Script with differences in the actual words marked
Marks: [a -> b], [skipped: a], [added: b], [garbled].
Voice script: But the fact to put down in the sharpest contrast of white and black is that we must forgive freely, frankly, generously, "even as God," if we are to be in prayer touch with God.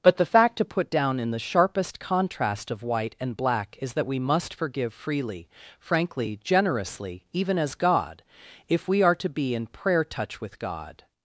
But the fact to put down in the sharpest contrast of white and black is that we must forgive freely, frankly, generously, "even as God," if we are to be in prayer touch with God.